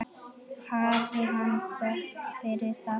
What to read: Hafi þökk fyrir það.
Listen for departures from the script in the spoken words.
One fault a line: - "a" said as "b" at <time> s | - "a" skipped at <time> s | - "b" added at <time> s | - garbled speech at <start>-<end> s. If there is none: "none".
- "hann" added at 1.3 s